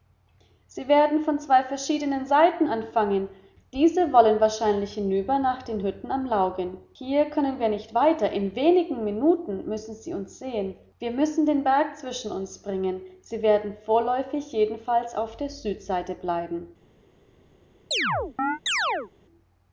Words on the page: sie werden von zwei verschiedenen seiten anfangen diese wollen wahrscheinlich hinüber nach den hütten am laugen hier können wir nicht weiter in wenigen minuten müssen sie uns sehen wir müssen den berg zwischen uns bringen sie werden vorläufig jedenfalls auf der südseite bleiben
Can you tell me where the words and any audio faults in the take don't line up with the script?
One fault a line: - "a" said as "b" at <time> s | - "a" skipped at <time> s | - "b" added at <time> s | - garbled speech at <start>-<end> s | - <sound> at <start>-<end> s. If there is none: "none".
- chirp at 17.9-19.1 s